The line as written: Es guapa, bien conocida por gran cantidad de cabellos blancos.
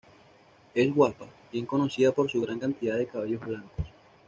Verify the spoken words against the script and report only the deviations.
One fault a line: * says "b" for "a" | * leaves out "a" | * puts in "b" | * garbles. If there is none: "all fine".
* puts in "su"